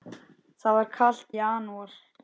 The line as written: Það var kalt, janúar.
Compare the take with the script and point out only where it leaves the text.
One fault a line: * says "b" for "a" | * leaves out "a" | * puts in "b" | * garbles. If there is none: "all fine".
all fine